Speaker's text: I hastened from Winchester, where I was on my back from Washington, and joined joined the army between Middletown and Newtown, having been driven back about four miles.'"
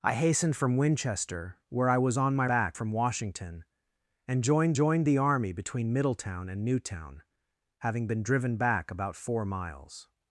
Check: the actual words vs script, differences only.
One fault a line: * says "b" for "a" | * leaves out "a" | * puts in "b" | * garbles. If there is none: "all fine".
all fine